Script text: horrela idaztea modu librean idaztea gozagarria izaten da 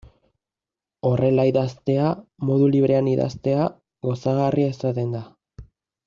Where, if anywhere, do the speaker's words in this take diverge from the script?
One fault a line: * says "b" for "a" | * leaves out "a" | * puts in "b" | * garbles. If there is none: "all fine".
all fine